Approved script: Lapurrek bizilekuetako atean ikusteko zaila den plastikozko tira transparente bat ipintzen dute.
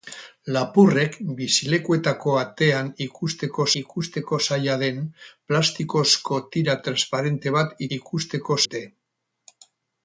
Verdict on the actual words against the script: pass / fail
fail